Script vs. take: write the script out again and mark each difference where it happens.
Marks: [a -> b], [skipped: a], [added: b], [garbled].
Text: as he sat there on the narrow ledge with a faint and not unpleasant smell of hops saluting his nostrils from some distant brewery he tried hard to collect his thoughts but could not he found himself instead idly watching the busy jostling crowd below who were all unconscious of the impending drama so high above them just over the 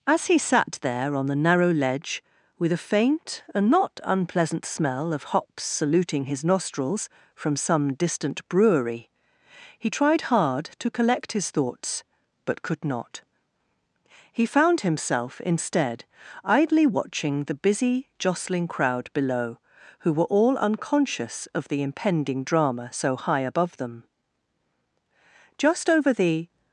as he sat there on the narrow ledge with a faint and not unpleasant smell of hops saluting his nostrils from some distant brewery he tried hard to collect his thoughts but could not he found himself instead idly watching the busy jostling crowd below who were all unconscious of the impending drama so high above them just over the